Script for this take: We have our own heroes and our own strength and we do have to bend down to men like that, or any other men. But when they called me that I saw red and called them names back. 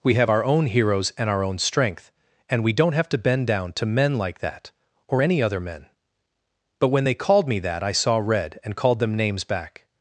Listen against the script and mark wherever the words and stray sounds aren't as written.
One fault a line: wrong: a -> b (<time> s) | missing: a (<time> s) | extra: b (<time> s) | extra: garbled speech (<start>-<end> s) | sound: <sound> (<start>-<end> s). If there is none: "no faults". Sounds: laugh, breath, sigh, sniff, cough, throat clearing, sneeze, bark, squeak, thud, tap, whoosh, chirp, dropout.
wrong: do -> don't (2.7 s)